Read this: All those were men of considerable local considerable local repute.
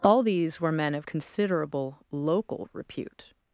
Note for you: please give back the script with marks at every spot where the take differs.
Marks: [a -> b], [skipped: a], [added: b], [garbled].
All [those -> these] were men of considerable local [skipped: considerable local] repute.